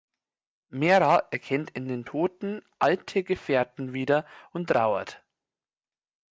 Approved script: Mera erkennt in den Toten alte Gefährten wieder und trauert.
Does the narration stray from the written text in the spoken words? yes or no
no